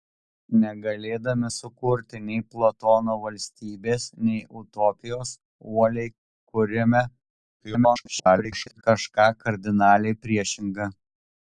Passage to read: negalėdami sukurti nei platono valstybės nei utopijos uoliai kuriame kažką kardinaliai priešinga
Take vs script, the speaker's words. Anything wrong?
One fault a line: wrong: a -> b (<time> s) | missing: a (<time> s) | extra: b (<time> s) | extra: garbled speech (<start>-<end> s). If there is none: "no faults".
extra: garbled speech (7.6-8.8 s)